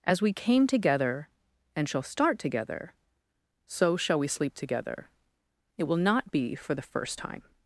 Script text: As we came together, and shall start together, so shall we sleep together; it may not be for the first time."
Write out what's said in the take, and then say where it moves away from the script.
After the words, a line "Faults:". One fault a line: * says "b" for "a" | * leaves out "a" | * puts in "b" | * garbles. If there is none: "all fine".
As we came together, and shall start together, so shall we sleep together; it will not be for the first time."
Faults:
* says "will" for "may"